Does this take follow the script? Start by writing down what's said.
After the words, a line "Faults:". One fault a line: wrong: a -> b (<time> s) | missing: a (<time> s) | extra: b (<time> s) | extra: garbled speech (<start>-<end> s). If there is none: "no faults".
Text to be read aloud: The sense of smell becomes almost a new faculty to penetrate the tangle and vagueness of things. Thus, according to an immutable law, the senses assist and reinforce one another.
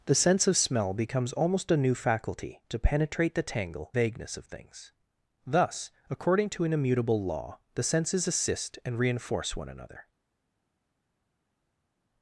The sense of smell becomes almost a new faculty to penetrate the tangle vagueness of things. Thus, according to an immutable law, the senses assist and reinforce one another.
Faults:
missing: and (3.9 s)